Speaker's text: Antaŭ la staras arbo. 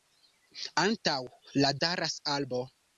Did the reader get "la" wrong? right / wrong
right